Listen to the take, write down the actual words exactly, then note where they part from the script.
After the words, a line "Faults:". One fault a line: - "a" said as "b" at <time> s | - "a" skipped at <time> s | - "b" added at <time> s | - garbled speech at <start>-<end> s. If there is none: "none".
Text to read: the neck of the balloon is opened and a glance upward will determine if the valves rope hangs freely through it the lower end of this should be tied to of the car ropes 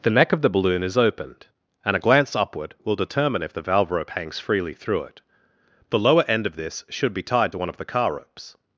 the neck of the balloon is opened and a glance upward will determine if the valve rope hangs freely through it the lower end of this should be tied to one of the car ropes
Faults:
- "valves" said as "valve" at 3.6 s
- "one" added at 7.6 s